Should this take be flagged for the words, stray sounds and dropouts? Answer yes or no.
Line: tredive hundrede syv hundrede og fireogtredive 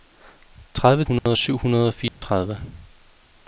yes